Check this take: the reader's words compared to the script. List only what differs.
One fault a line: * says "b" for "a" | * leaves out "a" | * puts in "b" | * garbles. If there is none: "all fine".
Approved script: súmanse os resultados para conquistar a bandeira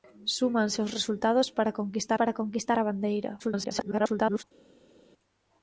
* puts in "para conquistar"
* garbles